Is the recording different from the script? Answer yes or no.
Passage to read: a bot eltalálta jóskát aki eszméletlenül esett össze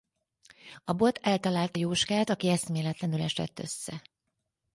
no